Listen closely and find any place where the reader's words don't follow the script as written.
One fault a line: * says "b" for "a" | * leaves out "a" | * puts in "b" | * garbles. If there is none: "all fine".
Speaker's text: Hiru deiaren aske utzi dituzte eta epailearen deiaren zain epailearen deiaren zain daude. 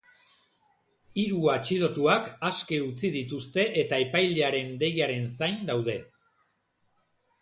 * says "atxilotuak" for "deiaren"
* leaves out "epailearen deiaren zain"